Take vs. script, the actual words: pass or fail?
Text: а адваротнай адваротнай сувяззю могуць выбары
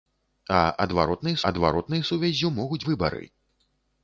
pass